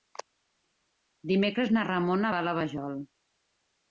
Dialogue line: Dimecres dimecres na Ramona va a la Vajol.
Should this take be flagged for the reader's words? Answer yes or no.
yes